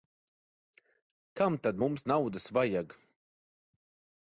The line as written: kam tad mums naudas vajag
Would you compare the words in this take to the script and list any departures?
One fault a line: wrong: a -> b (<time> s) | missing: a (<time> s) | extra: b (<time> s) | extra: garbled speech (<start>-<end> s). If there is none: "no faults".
no faults